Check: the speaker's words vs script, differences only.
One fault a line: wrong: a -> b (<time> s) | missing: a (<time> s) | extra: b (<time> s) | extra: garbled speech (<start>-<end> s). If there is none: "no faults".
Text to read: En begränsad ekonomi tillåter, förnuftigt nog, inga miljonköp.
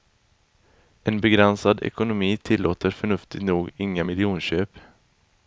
no faults